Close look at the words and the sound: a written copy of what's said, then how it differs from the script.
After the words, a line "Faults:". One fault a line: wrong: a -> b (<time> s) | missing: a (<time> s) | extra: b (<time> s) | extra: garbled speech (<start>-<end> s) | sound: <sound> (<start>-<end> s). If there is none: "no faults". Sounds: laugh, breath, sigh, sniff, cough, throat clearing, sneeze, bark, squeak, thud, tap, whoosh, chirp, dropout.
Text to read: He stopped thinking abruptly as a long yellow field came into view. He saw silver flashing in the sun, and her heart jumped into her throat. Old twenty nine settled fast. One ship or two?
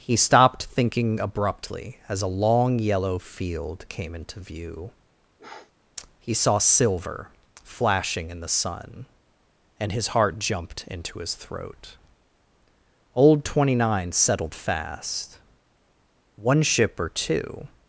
He stopped thinking abruptly as a long yellow field came into view. He saw silver flashing in the sun, and his heart jumped into his throat. Old twenty nine settled fast. One ship or two?
Faults:
sound: sniff (5.4-5.7 s)
wrong: her -> his (9.9 s)
wrong: her -> his (11.2 s)